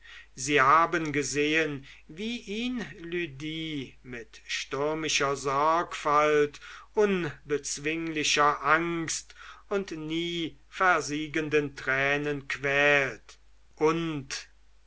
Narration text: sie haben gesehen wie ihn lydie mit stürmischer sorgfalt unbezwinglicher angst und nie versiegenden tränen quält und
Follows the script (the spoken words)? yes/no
yes